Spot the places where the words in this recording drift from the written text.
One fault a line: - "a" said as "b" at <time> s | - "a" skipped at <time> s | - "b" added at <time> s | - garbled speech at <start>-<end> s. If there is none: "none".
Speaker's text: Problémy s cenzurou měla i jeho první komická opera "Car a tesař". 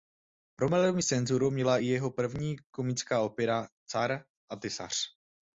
none